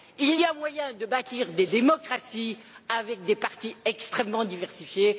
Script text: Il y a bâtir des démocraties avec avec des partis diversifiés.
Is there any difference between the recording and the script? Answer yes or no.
yes